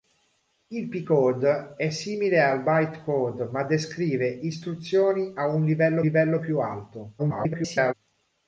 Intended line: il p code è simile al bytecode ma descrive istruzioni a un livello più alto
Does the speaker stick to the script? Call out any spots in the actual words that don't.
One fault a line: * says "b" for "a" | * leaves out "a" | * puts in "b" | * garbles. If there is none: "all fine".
* puts in "livello"
* garbles